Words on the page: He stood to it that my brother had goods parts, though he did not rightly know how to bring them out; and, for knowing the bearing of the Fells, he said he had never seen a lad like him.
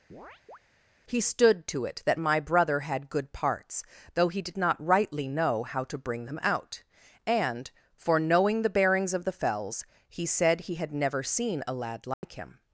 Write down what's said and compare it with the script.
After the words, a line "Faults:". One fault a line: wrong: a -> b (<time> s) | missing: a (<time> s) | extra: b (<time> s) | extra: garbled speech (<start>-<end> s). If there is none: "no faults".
He stood to it that my brother had good parts, though he did not rightly know how to bring them out; and, for knowing the bearings of the Fells, he said he had never seen a lad like him.
Faults:
wrong: goods -> good (3.1 s)
wrong: bearing -> bearings (8.7 s)